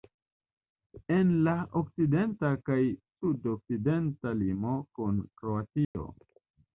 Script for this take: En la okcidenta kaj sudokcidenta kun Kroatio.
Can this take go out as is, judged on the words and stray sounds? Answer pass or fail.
fail